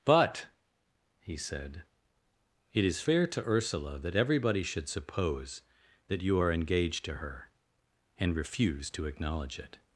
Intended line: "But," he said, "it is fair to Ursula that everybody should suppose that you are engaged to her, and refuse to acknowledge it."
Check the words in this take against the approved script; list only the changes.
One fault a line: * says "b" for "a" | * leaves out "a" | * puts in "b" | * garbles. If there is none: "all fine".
all fine